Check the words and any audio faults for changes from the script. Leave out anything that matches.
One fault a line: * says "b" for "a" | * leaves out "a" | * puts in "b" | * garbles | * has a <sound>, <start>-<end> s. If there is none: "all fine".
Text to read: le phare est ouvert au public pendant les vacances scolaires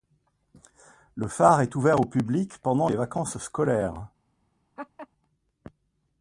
* has a laugh, 4.8-5.1 s